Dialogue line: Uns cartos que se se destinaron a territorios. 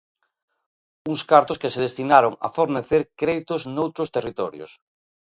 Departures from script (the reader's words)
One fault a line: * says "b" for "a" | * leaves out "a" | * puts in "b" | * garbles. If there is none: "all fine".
* leaves out "se"
* puts in "fornecer créditos noutros"